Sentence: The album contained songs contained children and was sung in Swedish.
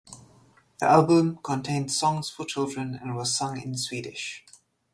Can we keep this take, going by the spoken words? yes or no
no